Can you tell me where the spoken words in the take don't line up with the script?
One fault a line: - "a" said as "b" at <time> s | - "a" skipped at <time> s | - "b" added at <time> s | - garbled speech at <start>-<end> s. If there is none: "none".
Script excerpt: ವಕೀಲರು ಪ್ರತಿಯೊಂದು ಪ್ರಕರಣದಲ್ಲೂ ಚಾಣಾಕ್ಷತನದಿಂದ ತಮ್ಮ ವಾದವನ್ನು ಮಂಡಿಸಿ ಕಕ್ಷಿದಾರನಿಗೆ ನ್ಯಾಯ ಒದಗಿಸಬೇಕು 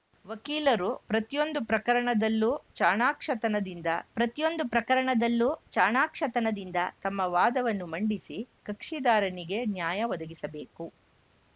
- "ಪ್ರತಿಯೊಂದು ಪ್ರಕರಣದಲ್ಲೂ ಚಾಣಾಕ್ಷತನದಿಂದ" added at 4.2 s